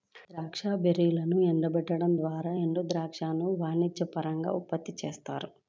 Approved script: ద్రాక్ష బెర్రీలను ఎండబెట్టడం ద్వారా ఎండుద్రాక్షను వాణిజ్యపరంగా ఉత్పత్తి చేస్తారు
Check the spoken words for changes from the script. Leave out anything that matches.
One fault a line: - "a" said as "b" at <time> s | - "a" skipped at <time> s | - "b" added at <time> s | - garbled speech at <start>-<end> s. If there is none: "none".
none